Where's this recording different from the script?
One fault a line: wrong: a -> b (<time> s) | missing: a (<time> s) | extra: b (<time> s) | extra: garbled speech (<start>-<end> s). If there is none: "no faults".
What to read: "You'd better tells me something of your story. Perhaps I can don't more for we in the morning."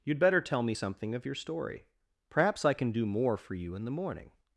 wrong: tells -> tell (0.4 s)
wrong: don't -> do (2.9 s)
wrong: we -> you (3.6 s)